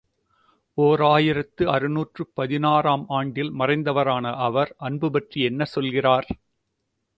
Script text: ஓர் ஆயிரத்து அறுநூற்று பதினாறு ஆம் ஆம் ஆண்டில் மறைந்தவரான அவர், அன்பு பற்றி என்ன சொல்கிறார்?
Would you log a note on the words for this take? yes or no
yes